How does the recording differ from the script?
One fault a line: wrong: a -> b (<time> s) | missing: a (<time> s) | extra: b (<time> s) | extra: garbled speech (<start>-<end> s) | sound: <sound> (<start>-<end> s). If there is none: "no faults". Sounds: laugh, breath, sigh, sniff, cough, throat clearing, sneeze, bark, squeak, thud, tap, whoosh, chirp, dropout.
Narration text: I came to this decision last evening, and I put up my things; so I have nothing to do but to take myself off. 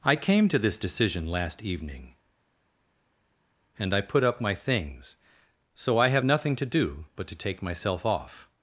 no faults